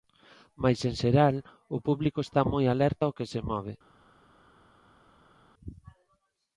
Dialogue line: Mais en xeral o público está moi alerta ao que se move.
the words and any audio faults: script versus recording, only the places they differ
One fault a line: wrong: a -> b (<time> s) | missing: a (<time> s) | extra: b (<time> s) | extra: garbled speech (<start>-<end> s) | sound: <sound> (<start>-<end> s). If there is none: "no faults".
no faults